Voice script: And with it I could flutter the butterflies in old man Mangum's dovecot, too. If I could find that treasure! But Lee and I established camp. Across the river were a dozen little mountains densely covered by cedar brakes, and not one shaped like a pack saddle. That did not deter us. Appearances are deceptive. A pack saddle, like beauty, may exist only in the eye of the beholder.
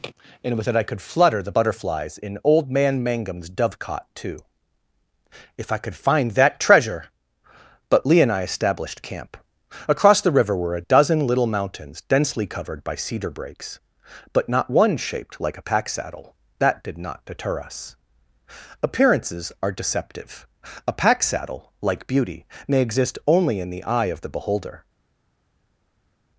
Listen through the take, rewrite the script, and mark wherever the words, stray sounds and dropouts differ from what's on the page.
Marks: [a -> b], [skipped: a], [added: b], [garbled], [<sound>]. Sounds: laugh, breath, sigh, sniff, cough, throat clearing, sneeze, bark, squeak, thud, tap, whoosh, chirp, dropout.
And with it I could flutter the butterflies in old man Mangum's dovecot, too. If I could find that treasure! But Lee and I established camp. Across the river were a dozen little mountains densely covered by cedar brakes, [and -> but] not one shaped like a pack saddle. That did not deter us. Appearances are deceptive. A pack saddle, like beauty, may exist only in the eye of the beholder.